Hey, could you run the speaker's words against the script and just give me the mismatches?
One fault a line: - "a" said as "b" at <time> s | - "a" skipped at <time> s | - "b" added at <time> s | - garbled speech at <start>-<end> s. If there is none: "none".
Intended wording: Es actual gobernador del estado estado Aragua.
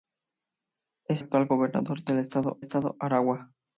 none